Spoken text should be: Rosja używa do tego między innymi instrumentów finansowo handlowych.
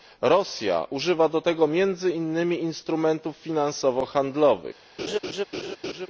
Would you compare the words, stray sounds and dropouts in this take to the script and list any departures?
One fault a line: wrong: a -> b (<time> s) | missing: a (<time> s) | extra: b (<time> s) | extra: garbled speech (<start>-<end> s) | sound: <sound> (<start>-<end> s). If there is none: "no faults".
sound: laugh (5.0-6.1 s)